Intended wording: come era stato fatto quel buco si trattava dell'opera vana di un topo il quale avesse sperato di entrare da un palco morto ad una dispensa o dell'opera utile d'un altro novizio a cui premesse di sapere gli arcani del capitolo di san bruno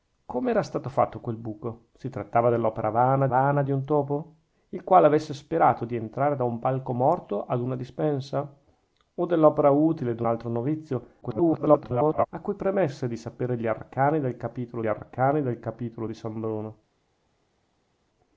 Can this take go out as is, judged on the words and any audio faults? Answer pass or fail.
fail